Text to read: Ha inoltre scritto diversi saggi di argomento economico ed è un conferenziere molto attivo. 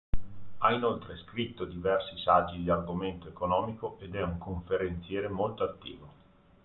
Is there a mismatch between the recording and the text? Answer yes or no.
no